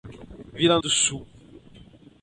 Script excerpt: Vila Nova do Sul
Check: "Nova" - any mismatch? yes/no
yes